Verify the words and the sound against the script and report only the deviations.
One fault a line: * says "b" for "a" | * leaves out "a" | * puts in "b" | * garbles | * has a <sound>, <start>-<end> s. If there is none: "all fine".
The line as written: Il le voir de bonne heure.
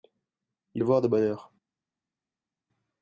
all fine